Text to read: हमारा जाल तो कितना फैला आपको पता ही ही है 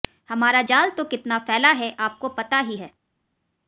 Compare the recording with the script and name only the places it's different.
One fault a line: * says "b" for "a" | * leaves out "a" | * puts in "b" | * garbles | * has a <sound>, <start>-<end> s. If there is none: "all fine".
* puts in "है"
* leaves out "ही"